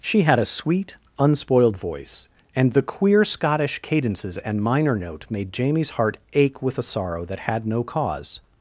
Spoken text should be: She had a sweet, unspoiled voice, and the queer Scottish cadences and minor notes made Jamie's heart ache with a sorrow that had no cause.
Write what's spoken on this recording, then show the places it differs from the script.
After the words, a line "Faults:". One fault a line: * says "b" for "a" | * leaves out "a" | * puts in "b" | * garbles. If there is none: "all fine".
She had a sweet, unspoiled voice, and the queer Scottish cadences and minor note made Jamie's heart ache with a sorrow that had no cause.
Faults:
* says "note" for "notes"